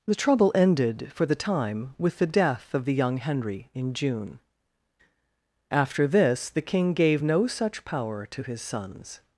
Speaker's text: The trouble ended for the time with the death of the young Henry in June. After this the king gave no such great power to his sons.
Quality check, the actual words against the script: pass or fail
fail